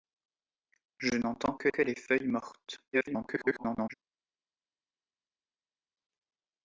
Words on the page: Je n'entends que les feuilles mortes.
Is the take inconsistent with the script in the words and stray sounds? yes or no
yes